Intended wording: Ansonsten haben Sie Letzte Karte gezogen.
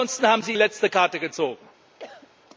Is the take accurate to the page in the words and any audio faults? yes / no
no